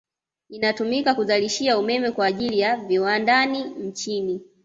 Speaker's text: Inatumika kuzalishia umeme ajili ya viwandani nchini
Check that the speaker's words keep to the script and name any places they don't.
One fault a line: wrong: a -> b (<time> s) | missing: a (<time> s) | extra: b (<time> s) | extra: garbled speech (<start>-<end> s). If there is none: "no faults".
extra: kwa (2.1 s)